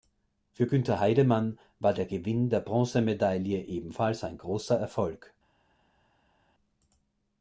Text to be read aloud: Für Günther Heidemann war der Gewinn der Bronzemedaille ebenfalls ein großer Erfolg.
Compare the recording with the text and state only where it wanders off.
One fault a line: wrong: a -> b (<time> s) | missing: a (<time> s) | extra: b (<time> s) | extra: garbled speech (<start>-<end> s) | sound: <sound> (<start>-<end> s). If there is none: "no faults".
no faults